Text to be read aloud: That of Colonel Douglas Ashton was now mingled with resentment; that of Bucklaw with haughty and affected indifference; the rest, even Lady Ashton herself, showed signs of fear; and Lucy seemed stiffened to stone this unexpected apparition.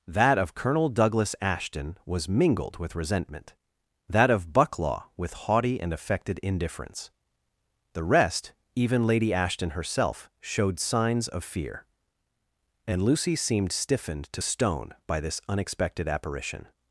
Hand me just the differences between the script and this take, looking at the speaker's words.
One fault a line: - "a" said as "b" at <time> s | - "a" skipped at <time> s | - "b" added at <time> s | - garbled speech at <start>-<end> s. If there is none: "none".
- "now" skipped at 2.3 s
- "by" added at 15.1 s